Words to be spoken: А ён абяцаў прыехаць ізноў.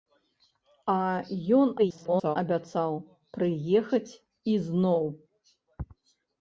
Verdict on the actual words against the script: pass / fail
fail